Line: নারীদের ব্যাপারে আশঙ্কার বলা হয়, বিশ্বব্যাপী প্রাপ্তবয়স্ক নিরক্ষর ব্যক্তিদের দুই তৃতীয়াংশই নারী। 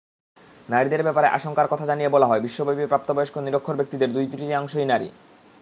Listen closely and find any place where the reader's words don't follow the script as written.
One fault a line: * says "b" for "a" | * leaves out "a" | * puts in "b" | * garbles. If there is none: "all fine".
* puts in "কথা জানিয়ে"